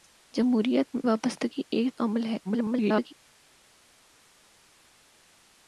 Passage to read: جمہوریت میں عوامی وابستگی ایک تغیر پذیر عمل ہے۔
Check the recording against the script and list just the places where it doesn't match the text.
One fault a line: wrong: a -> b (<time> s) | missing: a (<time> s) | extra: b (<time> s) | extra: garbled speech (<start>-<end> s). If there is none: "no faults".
missing: عوامی (1.0 s)
missing: تغیر پذیر (1.9 s)
extra: garbled speech (2.4-3.1 s)